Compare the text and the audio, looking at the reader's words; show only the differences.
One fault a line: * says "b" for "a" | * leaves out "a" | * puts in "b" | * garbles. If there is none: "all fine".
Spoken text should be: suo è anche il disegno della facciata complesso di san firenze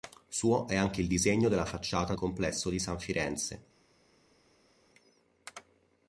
all fine